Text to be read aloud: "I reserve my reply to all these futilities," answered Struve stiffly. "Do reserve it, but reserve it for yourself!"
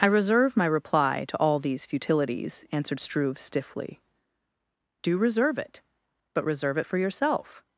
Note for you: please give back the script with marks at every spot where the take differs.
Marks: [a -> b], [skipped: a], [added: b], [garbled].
"I reserve my reply to all these futilities," answered Struve stiffly. "Do reserve it, but reserve it for yourself!"